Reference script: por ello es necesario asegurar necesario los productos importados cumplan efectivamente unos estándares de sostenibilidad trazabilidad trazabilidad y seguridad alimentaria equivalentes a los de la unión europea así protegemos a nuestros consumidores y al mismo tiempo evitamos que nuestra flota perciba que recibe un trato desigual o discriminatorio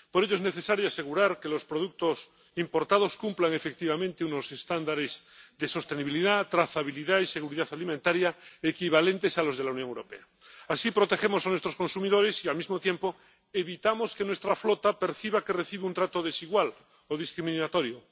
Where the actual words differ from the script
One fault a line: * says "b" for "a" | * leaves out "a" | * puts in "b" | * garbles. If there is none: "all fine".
* says "que" for "necesario"
* leaves out "trazabilidad"